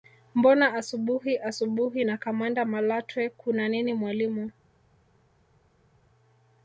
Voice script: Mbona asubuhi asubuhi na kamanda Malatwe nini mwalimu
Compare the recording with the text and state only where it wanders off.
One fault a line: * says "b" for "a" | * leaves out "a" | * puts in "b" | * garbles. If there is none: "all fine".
* puts in "kuna"